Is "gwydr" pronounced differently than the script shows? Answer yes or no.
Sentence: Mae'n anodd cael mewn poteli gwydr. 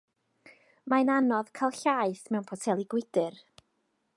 no